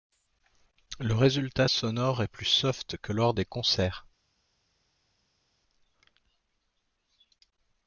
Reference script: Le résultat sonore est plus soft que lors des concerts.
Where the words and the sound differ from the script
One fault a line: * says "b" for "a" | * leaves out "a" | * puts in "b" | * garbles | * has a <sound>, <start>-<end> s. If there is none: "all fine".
all fine